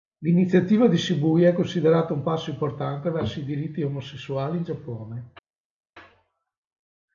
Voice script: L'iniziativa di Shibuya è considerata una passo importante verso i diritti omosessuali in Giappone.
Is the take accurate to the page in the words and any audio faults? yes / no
no